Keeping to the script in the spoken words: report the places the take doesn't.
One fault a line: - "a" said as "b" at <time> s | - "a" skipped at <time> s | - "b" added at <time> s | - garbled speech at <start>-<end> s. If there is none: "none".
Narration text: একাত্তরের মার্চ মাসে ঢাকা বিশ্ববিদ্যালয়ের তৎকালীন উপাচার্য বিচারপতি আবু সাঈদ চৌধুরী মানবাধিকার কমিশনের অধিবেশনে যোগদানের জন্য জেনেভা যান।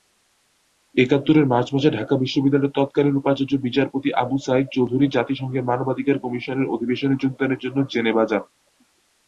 - "জাতিসংঘের" added at 5.1 s